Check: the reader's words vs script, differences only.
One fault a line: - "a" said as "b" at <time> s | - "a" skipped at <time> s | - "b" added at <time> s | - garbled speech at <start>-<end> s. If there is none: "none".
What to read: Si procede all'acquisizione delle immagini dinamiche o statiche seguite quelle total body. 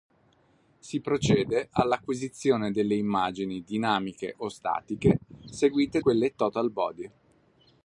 none